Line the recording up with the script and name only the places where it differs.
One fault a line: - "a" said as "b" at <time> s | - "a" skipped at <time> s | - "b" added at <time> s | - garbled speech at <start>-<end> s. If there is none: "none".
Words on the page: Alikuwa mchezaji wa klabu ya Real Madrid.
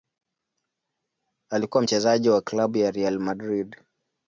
none